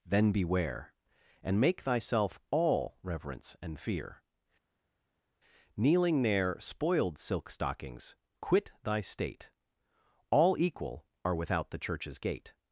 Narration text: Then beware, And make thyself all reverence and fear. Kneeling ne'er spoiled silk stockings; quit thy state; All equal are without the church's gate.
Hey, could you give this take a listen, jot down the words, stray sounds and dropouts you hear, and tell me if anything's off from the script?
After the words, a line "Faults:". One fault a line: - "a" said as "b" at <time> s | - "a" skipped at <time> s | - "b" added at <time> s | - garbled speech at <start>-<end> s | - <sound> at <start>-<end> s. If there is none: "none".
Then beware, And make thyself all reverence and fear. Kneeling ne'er spoiled silk stockings; quit thy state; All equal are without the church's gate.
Faults:
none